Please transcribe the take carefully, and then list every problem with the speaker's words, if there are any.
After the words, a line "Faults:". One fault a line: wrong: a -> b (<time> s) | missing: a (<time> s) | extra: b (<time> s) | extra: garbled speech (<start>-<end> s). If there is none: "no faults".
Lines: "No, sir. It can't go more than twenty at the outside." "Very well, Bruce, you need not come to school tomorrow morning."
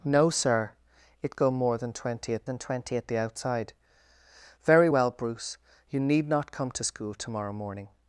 "No, sir. It go more than twenty at than twenty at the outside." "Very well, Bruce, you need not come to school tomorrow morning."
Faults:
missing: can't (1.4 s)
extra: than twenty at (2.4 s)